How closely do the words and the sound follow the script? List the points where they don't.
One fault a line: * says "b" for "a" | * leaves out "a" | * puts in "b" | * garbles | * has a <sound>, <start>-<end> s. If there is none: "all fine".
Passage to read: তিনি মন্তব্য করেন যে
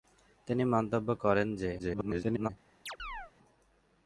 * garbles
* has a chirp, 2.9-3.3 s